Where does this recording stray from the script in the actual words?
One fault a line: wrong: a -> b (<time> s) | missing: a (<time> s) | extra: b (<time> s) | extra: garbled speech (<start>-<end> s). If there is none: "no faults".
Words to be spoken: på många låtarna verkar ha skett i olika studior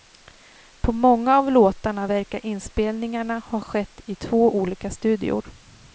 extra: av (1.4 s)
extra: inspelningarna (2.4 s)
extra: två (4.1 s)